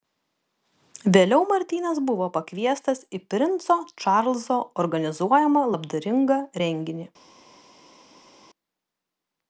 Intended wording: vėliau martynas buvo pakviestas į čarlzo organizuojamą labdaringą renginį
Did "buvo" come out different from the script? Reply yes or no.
no